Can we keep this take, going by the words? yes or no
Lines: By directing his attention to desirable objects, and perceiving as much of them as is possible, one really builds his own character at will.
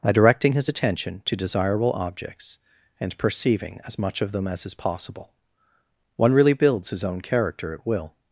yes